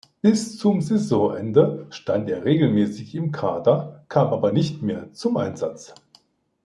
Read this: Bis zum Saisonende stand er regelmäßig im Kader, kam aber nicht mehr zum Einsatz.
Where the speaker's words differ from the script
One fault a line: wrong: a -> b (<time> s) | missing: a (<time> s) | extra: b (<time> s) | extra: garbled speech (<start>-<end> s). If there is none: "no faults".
no faults